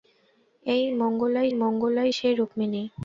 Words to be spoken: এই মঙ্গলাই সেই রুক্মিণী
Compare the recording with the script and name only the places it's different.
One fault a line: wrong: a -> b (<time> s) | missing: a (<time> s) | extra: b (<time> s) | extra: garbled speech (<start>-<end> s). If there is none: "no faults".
extra: মঙ্গলাই (1.5 s)